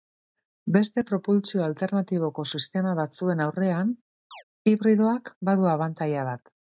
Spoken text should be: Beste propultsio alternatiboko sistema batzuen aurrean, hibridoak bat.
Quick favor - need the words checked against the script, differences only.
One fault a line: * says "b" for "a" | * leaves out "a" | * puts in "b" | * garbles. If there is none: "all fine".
* puts in "badu abantaila"